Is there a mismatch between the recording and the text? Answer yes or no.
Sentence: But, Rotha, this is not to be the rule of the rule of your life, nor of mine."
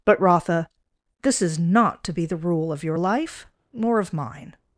yes